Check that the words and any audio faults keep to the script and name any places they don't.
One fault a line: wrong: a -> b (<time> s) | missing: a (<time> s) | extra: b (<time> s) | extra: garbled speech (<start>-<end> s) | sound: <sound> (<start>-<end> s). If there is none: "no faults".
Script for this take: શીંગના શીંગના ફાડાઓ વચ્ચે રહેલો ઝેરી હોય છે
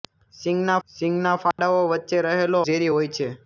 sound: dropout (1.5-1.6 s)